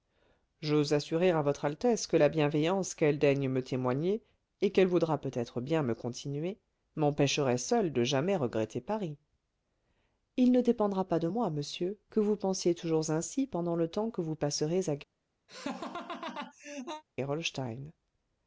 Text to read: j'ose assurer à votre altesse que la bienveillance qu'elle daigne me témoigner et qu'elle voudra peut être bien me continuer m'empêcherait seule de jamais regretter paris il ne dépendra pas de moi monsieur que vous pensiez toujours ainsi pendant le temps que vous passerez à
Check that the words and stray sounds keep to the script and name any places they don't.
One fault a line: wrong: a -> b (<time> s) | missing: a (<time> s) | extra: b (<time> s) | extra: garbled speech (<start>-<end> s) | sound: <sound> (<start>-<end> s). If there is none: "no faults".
sound: laugh (15.5-17.0 s)